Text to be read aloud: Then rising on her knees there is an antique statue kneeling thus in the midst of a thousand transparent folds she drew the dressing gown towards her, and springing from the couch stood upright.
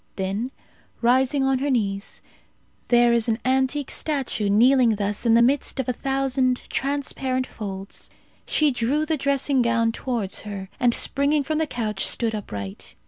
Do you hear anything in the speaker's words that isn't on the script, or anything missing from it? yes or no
no